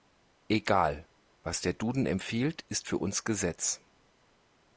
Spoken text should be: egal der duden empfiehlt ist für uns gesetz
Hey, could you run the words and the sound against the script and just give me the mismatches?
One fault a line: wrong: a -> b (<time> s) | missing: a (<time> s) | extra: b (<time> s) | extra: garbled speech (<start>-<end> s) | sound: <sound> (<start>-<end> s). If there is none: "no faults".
extra: was (1.4 s)